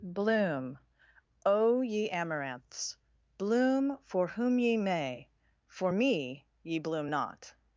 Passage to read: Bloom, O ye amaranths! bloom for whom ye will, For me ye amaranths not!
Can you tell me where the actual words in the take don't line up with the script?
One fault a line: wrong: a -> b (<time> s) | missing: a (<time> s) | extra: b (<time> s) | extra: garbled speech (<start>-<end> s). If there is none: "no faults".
wrong: will -> may (4.8 s)
wrong: amaranths -> bloom (6.8 s)